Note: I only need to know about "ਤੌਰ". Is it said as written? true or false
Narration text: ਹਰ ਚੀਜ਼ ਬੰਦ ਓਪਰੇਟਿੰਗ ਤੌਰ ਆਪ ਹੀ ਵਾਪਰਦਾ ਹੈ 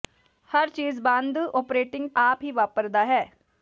false